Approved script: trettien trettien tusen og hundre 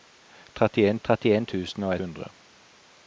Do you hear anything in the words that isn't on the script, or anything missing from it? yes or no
no